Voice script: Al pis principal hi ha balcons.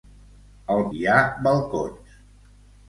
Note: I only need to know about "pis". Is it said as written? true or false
false